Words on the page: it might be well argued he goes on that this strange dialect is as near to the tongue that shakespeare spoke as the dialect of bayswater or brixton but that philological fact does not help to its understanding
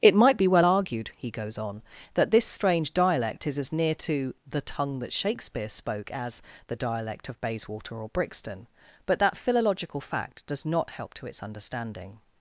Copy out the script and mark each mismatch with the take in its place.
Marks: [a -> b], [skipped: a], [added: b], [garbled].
it might be well argued he goes on that this strange dialect is as near to the tongue that shakespeare spoke as the dialect of bayswater or brixton but that philological fact does not help to its understanding